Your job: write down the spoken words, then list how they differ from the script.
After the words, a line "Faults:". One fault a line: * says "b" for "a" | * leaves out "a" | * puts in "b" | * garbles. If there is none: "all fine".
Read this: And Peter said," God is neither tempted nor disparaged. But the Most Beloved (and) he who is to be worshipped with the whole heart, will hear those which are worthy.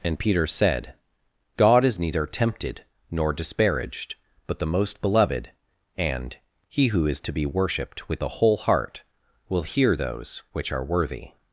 And Peter said," God is neither tempted nor disparaged. But the Most Beloved (and) he who is to be worshipped with the whole heart, will hear those which are worthy.
Faults:
all fine